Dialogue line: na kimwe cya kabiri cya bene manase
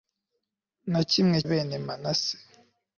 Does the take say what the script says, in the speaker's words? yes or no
no